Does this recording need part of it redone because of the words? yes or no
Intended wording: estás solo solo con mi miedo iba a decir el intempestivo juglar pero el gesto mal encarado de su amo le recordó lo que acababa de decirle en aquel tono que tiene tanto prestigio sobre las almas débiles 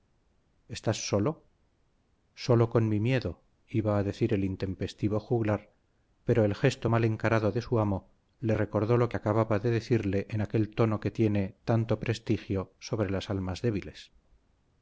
no